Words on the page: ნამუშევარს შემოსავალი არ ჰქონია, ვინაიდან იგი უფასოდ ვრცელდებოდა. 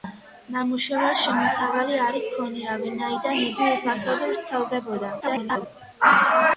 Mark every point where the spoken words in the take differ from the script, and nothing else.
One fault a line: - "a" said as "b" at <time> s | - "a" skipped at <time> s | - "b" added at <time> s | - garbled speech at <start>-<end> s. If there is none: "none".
- garbled speech at 5.2-5.7 s